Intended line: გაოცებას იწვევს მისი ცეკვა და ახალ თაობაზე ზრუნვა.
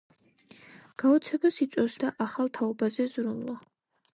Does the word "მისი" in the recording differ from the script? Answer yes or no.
yes